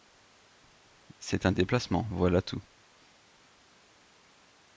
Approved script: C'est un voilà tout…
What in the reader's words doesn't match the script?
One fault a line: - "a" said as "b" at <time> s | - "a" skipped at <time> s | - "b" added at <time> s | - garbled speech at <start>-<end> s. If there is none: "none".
- "déplacement" added at 1.5 s